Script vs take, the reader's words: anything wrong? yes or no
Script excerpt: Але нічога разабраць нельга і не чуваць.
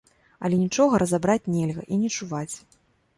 no